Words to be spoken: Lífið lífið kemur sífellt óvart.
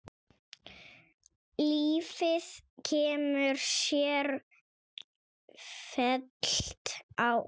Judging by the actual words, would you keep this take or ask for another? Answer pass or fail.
fail